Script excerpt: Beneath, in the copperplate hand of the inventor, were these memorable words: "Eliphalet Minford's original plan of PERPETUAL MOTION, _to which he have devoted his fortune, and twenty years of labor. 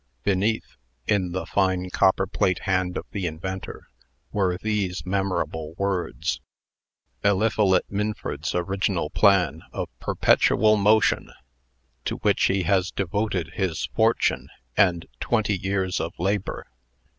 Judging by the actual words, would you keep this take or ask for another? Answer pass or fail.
fail